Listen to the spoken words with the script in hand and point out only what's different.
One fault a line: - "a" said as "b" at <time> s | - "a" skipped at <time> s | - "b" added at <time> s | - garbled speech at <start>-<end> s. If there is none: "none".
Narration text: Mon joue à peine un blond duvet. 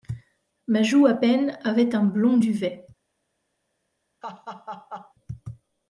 - "Mon" said as "Ma" at 0.7 s
- "avait" added at 1.6 s